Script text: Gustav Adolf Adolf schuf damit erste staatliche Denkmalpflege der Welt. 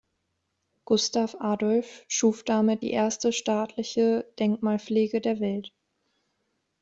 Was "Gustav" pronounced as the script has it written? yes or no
yes